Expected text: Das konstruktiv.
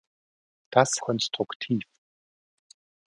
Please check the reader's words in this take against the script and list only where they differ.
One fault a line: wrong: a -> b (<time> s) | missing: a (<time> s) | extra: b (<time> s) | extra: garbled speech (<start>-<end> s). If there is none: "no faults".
no faults